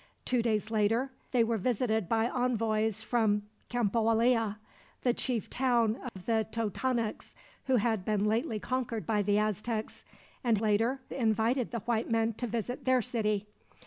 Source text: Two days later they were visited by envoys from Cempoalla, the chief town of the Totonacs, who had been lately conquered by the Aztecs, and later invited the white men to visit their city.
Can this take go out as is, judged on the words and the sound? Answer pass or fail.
fail